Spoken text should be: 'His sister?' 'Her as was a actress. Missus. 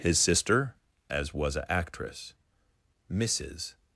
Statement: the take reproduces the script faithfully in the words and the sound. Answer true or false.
false